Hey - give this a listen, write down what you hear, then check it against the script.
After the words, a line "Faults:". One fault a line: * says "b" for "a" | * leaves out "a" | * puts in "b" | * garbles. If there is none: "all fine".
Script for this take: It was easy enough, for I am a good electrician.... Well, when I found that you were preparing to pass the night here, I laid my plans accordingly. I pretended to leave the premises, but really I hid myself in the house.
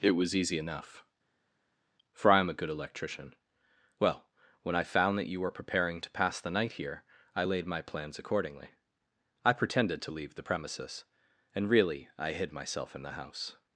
It was easy enough, for I am a good electrician.... Well, when I found that you were preparing to pass the night here, I laid my plans accordingly. I pretended to leave the premises, and really I hid myself in the house.
Faults:
* says "and" for "but"